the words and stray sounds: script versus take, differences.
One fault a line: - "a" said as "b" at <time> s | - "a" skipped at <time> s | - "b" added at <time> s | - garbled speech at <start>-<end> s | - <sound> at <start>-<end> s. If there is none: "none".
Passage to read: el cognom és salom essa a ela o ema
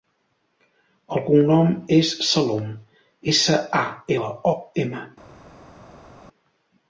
none